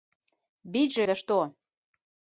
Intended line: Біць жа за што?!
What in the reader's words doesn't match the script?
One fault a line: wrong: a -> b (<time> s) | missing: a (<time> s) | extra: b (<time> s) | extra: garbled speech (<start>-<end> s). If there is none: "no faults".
no faults